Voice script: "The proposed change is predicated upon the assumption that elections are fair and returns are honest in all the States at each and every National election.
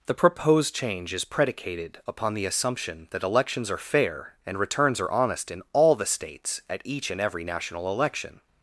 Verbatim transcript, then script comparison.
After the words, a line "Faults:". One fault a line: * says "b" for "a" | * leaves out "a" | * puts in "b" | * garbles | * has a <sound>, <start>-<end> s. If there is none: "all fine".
"The proposed change is predicated upon the assumption that elections are fair and returns are honest in all the States at each and every National election.
Faults:
all fine